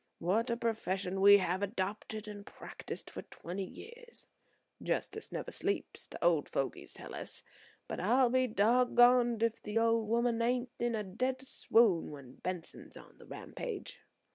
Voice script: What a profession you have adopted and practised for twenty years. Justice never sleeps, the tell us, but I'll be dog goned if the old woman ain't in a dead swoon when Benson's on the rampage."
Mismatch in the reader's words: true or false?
true